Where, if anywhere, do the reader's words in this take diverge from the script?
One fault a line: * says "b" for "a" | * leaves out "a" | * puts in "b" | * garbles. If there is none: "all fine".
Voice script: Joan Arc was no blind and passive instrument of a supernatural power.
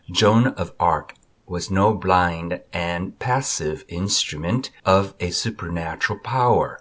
* puts in "of"